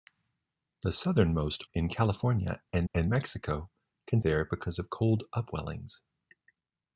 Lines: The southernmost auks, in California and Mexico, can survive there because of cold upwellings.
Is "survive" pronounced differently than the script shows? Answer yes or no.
yes